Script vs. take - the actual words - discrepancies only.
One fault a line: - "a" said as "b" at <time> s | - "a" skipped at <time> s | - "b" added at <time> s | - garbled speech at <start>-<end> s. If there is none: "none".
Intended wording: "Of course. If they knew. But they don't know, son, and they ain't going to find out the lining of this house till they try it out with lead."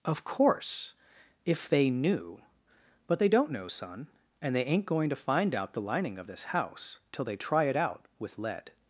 none